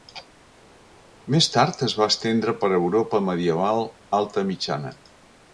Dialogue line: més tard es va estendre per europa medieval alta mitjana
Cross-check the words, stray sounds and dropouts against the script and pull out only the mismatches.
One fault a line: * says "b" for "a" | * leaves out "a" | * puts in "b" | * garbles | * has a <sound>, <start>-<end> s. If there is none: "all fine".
all fine